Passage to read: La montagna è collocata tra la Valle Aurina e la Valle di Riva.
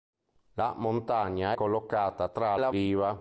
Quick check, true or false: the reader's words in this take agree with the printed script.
false